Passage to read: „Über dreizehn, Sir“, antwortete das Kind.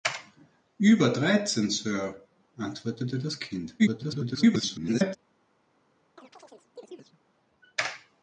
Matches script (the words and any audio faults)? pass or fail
fail